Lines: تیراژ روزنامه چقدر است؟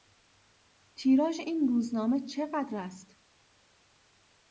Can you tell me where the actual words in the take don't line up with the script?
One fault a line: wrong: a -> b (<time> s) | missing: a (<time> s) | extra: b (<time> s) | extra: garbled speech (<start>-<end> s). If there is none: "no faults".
extra: این (1.4 s)